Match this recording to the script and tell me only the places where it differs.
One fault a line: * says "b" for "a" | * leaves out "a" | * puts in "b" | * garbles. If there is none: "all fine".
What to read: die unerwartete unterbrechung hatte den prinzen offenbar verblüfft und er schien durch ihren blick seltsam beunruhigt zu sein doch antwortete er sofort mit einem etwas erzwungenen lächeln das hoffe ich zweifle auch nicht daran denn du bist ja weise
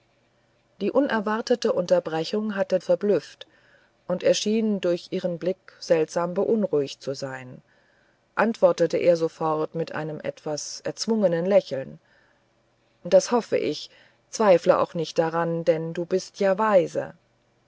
* leaves out "den prinzen offenbar"
* leaves out "doch"